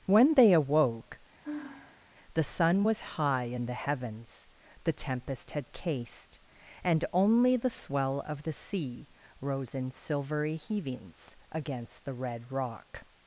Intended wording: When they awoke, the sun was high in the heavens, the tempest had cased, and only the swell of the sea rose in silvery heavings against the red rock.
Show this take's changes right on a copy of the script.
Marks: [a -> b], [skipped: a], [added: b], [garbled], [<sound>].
When they awoke, [sigh] the sun was high in the heavens, the tempest had cased, and only the swell of the sea rose in silvery heavings against the red rock.